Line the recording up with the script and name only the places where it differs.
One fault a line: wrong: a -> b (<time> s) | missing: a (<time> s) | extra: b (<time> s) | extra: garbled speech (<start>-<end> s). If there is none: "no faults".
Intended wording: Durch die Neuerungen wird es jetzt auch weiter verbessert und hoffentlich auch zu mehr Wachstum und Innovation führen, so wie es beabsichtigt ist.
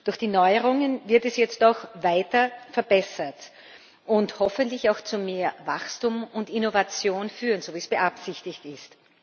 no faults